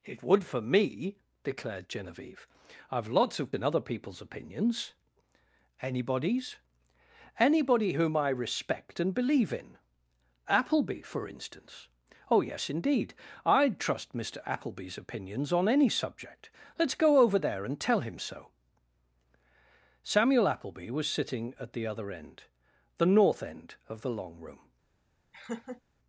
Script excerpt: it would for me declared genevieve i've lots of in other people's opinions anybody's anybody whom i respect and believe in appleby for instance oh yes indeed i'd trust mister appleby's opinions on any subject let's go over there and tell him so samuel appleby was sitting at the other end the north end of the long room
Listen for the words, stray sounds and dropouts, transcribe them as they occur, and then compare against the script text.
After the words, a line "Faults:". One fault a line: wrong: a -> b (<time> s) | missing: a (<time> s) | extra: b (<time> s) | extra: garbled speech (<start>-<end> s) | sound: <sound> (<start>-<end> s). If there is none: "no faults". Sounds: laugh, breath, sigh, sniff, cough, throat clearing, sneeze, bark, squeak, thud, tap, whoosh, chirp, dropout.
it would for me declared genevieve i've lots of in other people's opinions anybody's anybody whom i respect and believe in appleby for instance oh yes indeed i'd trust mister appleby's opinions on any subject let's go over there and tell him so samuel appleby was sitting at the other end the north end of the long room
Faults:
sound: laugh (25.3-25.8 s)